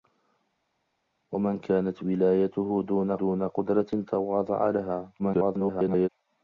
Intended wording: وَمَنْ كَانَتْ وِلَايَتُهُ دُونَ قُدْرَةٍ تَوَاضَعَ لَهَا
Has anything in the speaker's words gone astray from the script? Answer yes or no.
yes